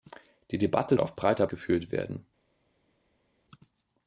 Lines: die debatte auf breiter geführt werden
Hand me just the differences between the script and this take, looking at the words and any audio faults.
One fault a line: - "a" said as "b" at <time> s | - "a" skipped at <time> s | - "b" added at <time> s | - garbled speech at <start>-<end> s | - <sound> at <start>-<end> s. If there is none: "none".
none